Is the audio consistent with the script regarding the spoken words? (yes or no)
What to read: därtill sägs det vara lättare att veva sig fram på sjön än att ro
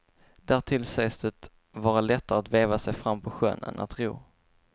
yes